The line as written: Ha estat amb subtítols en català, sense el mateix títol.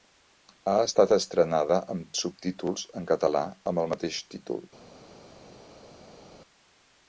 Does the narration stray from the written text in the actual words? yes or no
yes